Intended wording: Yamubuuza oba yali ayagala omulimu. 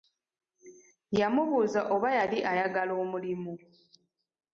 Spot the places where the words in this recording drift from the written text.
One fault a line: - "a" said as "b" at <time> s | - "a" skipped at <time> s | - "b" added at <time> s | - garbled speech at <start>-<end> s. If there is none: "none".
none